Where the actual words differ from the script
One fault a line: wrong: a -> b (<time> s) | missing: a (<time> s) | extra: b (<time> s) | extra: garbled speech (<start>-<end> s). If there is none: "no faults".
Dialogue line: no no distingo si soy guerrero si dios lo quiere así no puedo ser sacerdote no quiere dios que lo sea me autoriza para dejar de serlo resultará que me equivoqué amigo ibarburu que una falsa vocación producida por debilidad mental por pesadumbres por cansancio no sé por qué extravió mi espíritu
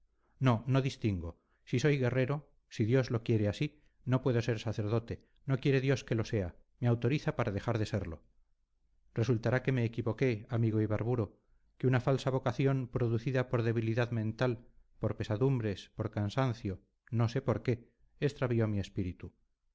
no faults